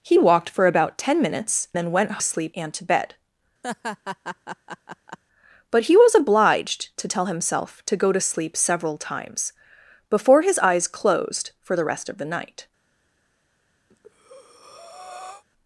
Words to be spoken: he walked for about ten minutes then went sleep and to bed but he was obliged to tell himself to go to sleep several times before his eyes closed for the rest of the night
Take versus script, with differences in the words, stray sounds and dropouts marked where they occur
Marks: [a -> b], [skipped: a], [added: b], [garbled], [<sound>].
he walked for about ten minutes then went sleep and to bed [laugh] but he was obliged to tell himself to go to sleep several times before his eyes closed for the rest of the night [breath]